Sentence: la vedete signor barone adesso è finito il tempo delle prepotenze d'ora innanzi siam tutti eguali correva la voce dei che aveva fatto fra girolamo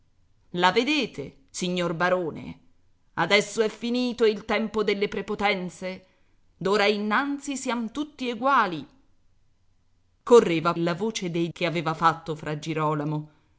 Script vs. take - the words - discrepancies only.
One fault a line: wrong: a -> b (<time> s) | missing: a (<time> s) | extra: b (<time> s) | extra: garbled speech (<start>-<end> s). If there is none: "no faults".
no faults